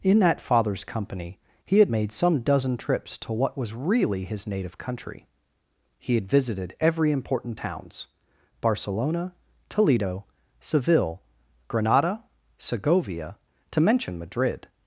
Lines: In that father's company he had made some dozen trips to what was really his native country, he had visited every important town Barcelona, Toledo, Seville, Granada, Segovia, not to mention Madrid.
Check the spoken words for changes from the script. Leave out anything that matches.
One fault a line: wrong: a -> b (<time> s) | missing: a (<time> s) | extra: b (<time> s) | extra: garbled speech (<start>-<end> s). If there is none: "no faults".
wrong: town -> towns (7.6 s)
missing: not (13.4 s)